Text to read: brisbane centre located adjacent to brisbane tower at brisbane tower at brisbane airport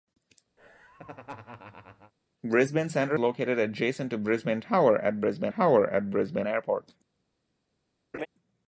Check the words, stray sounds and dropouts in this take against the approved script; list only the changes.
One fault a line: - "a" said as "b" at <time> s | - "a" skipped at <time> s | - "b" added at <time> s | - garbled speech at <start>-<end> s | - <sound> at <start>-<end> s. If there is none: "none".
- laugh at 0.6-2.1 s
- laugh at 8.1-8.3 s